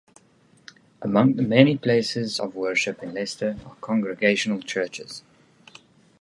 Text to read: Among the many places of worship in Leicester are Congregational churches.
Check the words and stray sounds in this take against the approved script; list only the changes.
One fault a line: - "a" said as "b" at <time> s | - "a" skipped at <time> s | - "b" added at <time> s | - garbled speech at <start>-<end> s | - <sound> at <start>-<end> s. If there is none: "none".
none